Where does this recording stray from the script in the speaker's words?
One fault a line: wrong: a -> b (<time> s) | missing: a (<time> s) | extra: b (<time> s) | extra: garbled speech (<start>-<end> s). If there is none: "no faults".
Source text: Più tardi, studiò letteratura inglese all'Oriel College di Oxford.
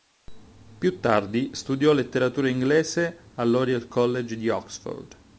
no faults